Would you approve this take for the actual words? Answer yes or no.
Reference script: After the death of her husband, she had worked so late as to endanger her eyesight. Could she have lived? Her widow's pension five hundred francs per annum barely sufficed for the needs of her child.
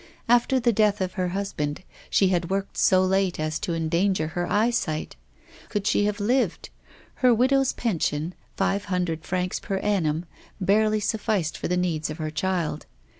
yes